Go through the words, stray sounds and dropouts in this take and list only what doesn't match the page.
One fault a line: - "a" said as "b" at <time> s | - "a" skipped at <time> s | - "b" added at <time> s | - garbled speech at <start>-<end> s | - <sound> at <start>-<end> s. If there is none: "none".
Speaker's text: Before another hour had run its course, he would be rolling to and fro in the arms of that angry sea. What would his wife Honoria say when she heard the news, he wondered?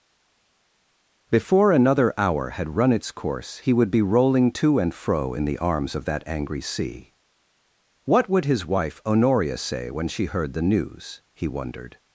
none